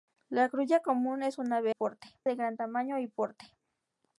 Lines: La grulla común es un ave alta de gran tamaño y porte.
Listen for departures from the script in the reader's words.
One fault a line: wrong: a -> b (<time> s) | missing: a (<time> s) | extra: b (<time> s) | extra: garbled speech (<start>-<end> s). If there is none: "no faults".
wrong: alta -> porte (1.7 s)